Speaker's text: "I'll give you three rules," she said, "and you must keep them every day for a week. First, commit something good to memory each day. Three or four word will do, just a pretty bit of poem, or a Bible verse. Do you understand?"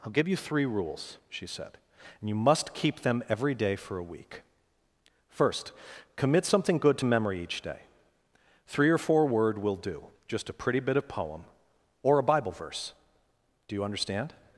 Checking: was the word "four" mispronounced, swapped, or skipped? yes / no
no